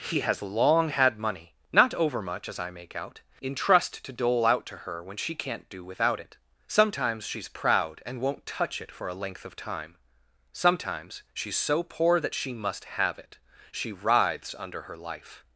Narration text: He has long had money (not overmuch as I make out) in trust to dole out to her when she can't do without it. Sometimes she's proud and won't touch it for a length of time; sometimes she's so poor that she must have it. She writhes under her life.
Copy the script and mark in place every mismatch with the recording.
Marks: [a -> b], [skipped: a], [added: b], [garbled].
He has long had money (not overmuch as I make out) in trust to dole out to her when she can't do without it. Sometimes she's proud and won't touch it for a length of time; sometimes she's so poor that she must have it. She writhes under her life.